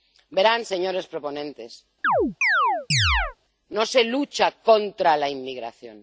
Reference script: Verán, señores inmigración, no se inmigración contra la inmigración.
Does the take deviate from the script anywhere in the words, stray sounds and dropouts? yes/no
yes